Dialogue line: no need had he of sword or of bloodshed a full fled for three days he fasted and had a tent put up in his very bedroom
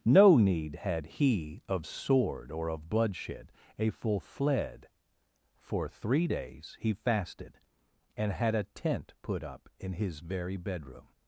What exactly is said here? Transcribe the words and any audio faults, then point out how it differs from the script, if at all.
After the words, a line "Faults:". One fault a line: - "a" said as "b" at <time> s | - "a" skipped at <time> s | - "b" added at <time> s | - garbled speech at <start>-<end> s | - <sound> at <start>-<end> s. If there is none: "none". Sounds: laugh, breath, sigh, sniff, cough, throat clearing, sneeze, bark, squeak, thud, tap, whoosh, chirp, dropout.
no need had he of sword or of bloodshed a full fled for three days he fasted and had a tent put up in his very bedroom
Faults:
none